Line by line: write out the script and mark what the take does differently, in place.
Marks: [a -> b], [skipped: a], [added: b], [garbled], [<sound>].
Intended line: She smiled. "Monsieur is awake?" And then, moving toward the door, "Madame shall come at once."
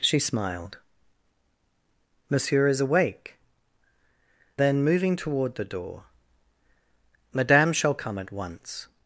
She smiled. "Monsieur is awake?" [skipped: And] then, moving toward the door, "Madame shall come at once."